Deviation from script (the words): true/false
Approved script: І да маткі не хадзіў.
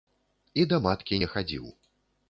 false